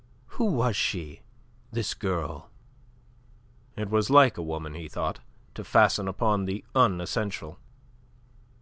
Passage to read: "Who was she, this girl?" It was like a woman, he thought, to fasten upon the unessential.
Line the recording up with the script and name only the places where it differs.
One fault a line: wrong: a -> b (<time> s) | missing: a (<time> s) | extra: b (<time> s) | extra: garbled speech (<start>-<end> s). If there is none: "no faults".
no faults